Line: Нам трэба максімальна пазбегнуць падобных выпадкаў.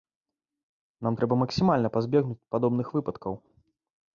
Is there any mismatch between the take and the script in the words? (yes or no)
no